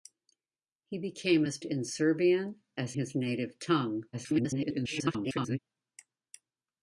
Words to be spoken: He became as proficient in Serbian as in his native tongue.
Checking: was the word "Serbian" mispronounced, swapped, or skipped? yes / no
no